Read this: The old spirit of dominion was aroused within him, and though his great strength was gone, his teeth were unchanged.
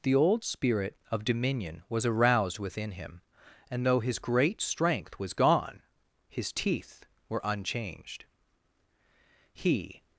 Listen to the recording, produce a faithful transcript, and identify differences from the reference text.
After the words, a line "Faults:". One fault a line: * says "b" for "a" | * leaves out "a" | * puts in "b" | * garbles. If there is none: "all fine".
The old spirit of dominion was aroused within him, and though his great strength was gone, his teeth were unchanged. He
Faults:
* puts in "He"